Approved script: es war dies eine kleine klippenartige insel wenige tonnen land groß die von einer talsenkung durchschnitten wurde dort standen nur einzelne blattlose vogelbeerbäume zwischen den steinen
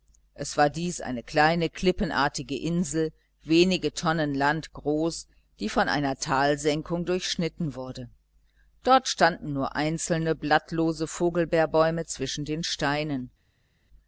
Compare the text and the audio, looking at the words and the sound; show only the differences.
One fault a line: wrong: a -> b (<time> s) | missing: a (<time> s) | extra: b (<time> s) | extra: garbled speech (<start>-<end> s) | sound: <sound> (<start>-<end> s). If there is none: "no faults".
no faults